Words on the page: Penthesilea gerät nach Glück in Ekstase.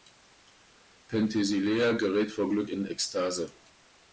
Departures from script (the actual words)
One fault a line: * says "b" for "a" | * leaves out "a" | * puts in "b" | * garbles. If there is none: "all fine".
* says "vor" for "nach"